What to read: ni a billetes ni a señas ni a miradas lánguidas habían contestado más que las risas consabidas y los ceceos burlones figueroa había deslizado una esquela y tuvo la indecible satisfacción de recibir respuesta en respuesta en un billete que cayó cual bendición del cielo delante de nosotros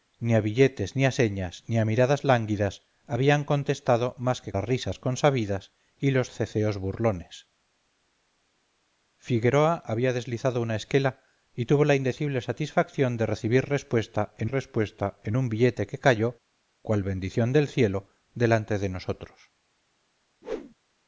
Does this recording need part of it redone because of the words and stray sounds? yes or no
yes